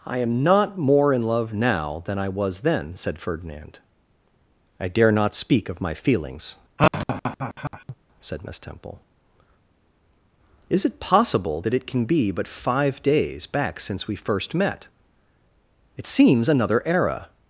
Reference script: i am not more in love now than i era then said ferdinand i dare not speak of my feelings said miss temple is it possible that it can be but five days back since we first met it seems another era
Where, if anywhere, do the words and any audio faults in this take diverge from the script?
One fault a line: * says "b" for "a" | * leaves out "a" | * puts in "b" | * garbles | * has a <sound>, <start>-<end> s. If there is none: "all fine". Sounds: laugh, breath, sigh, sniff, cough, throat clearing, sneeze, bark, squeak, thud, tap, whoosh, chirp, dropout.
* says "was" for "era"
* has a laugh, 6.8-8.0 s